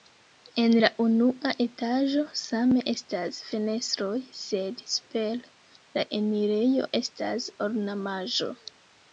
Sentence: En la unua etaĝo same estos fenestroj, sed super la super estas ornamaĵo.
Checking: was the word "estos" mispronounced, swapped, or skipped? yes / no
yes